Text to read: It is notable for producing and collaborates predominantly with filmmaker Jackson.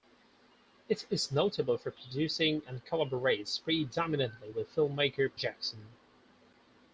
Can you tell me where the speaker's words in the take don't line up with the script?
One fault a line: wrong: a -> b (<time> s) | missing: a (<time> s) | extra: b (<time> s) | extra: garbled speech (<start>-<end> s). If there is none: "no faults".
no faults